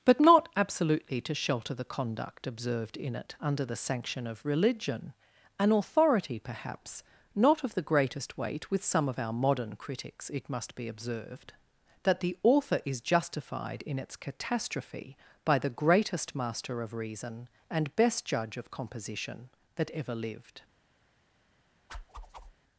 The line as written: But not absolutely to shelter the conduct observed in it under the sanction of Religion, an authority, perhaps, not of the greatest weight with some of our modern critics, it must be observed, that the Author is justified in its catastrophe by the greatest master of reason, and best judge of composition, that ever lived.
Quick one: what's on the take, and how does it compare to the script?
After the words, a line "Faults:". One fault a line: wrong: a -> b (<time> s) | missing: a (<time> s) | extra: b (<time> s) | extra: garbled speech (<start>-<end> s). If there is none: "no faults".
But not absolutely to shelter the conduct observed in it under the sanction of Religion, an authority, perhaps, not of the greatest weight with some of our modern critics, it must be observed, that the Author is justified in its catastrophe by the greatest master of reason, and best judge of composition, that ever lived.
Faults:
no faults